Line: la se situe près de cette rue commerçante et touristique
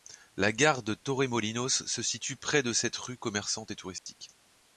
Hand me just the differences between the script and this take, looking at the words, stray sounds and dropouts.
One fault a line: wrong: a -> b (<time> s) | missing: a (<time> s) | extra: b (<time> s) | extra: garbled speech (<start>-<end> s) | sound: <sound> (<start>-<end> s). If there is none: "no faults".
extra: gare de torremolinos (0.5 s)
sound: dropout (4.0-4.1 s)